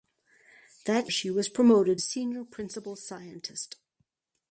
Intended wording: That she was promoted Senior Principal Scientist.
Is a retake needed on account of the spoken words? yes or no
no